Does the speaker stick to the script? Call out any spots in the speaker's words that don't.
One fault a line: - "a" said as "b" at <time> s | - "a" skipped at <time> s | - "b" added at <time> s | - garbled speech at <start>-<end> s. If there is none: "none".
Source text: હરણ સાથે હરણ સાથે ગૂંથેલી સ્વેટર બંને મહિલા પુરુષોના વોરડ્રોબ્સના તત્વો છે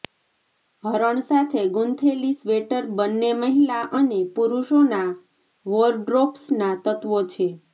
- "હરણ સાથે" skipped at 1.6 s
- "અને" added at 4.0 s